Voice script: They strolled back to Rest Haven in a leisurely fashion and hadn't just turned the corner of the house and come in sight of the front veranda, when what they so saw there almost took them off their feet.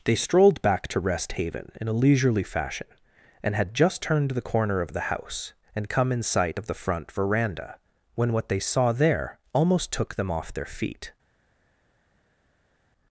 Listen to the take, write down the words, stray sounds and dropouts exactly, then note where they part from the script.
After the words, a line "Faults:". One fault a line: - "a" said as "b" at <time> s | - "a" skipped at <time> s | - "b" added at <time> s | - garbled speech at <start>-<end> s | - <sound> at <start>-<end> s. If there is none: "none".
They strolled back to Rest Haven in a leisurely fashion and had just turned the corner of the house and come in sight of the front veranda, when what they saw there almost took them off their feet.
Faults:
- "hadn't" said as "had" at 3.5 s
- "so" skipped at 8.6 s